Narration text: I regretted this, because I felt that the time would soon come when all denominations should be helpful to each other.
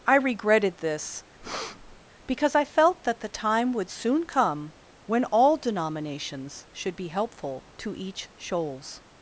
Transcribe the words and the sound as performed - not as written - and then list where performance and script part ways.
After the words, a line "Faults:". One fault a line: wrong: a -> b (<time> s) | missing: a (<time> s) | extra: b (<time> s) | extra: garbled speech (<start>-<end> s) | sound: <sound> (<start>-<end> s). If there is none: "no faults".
I regretted this, because I felt that the time would soon come when all denominations should be helpful to each shoals.
Faults:
sound: breath (1.4-2.0 s)
wrong: other -> shoals (8.4 s)